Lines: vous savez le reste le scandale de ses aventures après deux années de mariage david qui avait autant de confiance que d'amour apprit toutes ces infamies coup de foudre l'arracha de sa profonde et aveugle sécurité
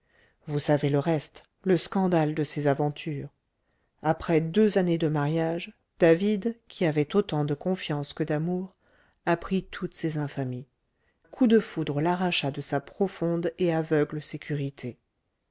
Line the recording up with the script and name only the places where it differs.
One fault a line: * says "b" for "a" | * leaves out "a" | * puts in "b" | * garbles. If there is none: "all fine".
all fine